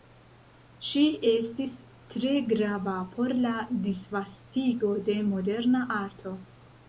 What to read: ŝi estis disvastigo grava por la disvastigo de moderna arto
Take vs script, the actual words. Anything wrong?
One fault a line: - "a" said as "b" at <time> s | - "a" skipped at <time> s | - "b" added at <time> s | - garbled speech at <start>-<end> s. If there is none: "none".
- "disvastigo" said as "tre" at 2.1 s